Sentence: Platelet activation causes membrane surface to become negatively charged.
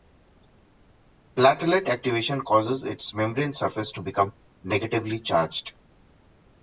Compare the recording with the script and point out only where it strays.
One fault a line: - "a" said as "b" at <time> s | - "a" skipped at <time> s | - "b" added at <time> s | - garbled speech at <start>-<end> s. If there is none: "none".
- "its" added at 2.8 s